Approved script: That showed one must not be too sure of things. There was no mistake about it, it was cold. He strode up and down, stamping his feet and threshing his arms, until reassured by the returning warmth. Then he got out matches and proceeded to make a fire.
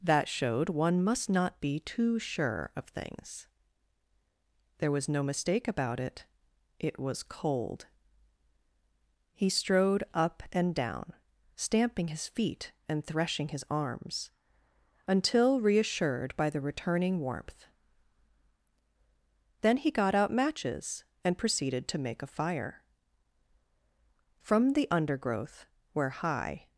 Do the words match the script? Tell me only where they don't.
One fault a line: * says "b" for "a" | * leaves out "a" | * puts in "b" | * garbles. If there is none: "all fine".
* puts in "From the undergrowth where high"